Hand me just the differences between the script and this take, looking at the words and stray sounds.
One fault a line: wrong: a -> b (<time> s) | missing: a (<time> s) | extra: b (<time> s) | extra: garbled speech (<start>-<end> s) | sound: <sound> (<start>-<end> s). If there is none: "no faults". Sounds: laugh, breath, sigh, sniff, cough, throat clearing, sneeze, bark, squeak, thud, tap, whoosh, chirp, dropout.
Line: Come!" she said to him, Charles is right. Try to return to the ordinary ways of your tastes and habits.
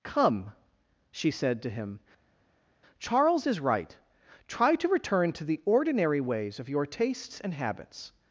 no faults